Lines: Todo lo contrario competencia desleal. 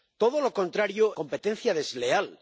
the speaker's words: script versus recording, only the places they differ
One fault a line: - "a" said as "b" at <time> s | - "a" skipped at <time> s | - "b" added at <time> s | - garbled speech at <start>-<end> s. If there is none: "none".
none